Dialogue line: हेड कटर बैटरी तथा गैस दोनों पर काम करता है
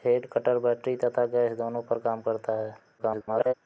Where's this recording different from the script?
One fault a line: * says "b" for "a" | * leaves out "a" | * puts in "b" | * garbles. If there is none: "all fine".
* garbles